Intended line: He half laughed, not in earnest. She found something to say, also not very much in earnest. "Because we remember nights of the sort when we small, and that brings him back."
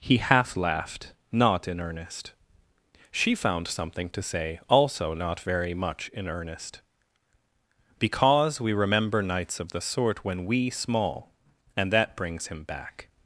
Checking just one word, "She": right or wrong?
right